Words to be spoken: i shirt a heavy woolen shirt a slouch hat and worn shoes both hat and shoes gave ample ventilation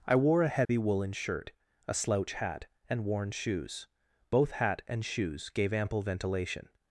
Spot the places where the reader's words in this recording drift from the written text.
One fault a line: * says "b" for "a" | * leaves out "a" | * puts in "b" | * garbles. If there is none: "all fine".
* says "wore" for "shirt"